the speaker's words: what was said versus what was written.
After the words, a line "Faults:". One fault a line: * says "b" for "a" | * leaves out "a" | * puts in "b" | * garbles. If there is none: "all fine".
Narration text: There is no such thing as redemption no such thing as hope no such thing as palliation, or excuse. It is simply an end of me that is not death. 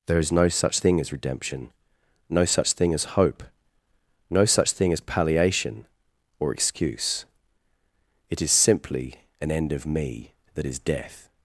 There is no such thing as redemption no such thing as hope no such thing as palliation, or excuse. It is simply an end of me that is death.
Faults:
* leaves out "not"